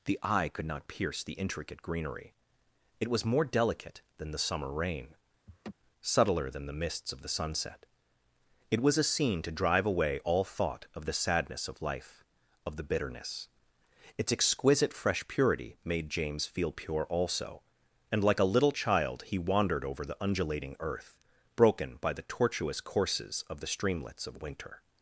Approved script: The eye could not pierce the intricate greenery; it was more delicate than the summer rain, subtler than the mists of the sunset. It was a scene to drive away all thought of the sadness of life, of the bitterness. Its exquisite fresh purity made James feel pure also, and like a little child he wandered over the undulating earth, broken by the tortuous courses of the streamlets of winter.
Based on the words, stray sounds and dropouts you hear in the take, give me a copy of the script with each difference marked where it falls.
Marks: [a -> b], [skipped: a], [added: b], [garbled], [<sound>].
The eye could not pierce the intricate greenery; it was more delicate than the summer rain, [laugh] subtler than the mists of the sunset. It was a scene to drive away all thought of the sadness of life, of the bitterness. Its exquisite fresh purity made James feel pure also, and like a little child he wandered over the undulating earth, broken by the tortuous courses of the streamlets of winter.